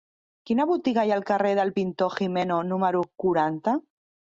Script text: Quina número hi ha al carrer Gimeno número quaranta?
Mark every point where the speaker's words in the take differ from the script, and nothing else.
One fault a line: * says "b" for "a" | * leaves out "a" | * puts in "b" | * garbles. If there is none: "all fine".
* says "botiga" for "número"
* puts in "del Pintor"